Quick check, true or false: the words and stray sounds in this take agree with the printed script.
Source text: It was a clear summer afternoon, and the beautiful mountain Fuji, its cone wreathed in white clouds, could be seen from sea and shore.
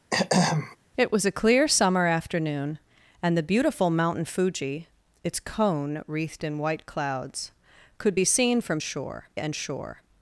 false